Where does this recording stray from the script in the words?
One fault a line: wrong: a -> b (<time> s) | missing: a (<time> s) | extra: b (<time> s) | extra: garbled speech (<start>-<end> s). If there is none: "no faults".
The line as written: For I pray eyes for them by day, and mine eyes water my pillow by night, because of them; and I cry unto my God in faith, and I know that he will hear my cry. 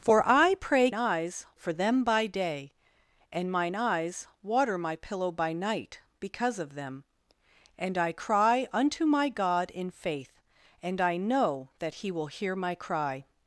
no faults